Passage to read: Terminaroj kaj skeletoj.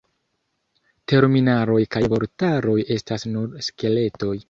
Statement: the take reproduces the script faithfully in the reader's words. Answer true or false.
false